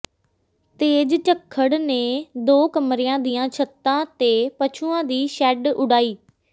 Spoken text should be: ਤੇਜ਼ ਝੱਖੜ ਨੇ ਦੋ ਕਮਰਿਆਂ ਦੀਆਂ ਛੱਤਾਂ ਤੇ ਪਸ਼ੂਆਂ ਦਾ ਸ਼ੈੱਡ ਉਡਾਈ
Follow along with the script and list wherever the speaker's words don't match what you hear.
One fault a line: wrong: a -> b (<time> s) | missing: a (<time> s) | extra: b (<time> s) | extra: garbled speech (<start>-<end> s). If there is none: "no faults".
wrong: ਦਾ -> ਦੀ (5.0 s)